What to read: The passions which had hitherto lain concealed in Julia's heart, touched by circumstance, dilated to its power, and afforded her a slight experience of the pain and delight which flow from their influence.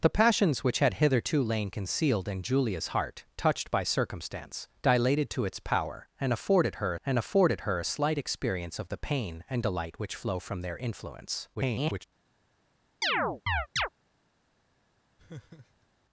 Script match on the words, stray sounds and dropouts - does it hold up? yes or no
no